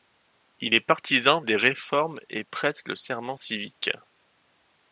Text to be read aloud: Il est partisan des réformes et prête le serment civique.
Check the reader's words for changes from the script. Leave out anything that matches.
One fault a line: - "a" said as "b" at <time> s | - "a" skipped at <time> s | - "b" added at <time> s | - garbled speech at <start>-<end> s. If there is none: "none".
none